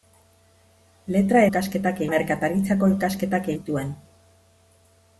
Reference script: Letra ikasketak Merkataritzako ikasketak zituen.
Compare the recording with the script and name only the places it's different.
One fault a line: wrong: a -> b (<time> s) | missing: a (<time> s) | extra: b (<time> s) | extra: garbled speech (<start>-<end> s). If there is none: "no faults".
no faults